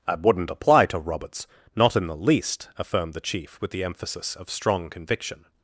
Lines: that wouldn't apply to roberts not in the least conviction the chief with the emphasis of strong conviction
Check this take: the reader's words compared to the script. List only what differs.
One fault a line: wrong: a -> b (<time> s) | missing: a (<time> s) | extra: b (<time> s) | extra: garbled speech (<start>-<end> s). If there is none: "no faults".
wrong: conviction -> affirmed (2.8 s)